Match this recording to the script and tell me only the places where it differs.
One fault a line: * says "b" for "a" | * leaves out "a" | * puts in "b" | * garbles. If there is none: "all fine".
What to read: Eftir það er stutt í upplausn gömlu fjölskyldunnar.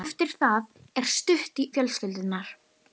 * leaves out "upplausn gömlu"